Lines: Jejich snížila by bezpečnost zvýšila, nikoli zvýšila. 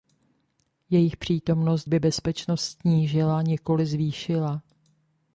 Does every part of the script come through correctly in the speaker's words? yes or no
no